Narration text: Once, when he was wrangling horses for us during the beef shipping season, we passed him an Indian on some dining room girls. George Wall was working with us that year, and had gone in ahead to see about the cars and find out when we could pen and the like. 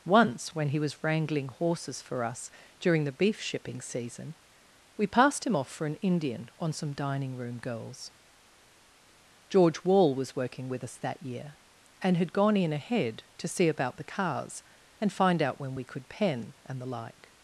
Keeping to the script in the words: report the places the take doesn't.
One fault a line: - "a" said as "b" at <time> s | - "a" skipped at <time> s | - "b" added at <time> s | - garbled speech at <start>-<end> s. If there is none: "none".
- "off for" added at 5.5 s